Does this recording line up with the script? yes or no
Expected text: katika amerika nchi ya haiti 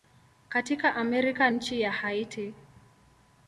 yes